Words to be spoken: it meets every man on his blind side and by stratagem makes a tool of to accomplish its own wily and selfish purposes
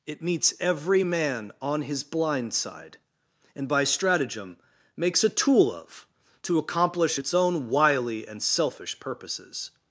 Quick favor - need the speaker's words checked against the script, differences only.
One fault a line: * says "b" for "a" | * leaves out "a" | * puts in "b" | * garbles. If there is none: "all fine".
all fine